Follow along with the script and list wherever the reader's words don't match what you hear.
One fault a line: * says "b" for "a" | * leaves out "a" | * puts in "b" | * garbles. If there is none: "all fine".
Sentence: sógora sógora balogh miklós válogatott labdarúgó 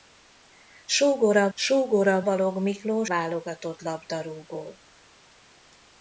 all fine